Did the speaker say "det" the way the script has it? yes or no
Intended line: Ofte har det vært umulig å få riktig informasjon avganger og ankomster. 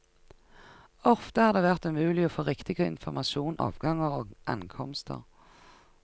yes